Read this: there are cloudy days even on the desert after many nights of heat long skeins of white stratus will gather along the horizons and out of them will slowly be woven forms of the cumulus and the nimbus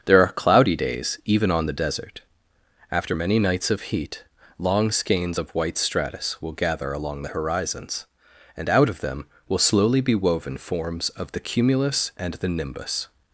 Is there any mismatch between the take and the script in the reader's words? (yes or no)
no